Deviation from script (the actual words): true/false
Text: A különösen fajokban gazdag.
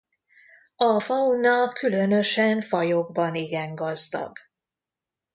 true